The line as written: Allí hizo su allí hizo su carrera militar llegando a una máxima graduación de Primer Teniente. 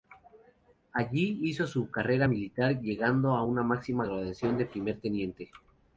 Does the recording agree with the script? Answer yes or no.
no